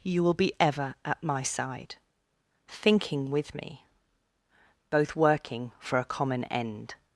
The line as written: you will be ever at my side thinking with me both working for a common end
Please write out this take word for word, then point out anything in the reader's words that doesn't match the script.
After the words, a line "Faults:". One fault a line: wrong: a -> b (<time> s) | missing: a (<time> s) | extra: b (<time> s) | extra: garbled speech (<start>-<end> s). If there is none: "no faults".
you will be ever at my side thinking with me both working for a common end
Faults:
no faults